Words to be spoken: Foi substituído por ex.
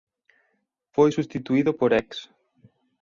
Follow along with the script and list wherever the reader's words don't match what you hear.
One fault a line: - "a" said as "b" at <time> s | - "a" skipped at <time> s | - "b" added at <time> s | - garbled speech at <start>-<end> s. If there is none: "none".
none